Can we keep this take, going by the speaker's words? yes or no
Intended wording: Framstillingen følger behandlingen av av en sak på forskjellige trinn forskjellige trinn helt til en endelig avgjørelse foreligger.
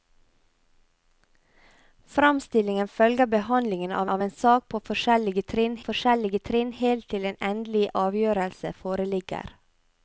yes